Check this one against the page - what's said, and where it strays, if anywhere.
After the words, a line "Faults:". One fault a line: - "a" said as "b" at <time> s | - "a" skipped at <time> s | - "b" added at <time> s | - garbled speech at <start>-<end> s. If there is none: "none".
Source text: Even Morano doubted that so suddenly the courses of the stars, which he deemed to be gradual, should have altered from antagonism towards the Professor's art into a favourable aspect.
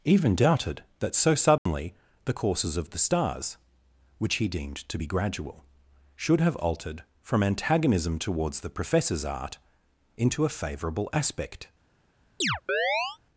Even doubted that so suddenly the courses of the stars, which he deemed to be gradual, should have altered from antagonism towards the Professor's art into a favourable aspect.
Faults:
- "Morano" skipped at 0.3 s